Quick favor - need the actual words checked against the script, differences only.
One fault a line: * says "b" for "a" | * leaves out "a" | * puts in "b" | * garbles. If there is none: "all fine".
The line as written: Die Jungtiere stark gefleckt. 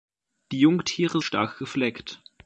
all fine